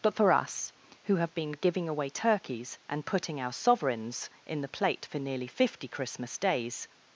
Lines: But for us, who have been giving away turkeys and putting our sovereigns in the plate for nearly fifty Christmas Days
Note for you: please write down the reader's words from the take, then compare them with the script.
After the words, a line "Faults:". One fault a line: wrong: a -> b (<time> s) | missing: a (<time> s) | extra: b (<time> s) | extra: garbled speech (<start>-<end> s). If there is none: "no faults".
But for us, who have been giving away turkeys and putting our sovereigns in the plate for nearly fifty Christmas Days
Faults:
no faults